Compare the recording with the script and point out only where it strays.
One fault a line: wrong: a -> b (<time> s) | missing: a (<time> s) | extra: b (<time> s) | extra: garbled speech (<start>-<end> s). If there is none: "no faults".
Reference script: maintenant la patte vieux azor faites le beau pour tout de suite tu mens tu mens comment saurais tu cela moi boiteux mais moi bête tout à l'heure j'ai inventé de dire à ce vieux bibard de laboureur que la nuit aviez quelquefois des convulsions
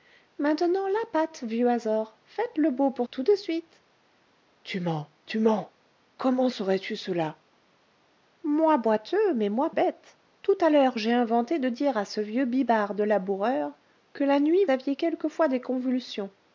no faults